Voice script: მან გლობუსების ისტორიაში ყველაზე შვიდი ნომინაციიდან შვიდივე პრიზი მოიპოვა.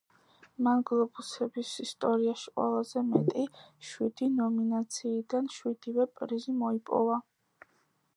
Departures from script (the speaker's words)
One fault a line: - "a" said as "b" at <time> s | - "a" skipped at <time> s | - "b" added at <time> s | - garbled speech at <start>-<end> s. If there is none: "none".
- "მეტი" added at 3.1 s